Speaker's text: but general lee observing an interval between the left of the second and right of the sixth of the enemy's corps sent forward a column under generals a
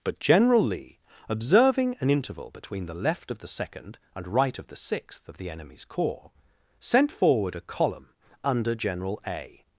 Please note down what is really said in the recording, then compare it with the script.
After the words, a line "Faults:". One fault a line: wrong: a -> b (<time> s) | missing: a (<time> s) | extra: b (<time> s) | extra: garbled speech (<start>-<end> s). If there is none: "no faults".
but general lee observing an interval between the left of the second and right of the sixth of the enemy's corps sent forward a column under general a
Faults:
wrong: generals -> general (8.7 s)